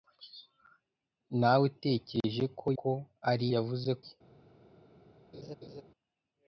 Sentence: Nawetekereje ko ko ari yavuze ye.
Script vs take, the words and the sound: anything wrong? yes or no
yes